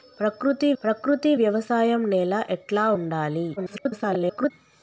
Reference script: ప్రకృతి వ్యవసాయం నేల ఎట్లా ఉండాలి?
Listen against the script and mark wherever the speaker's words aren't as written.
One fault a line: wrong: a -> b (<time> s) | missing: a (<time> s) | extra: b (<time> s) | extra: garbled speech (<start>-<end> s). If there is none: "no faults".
extra: ప్రకృతి (0.8 s)
extra: garbled speech (3.6-4.5 s)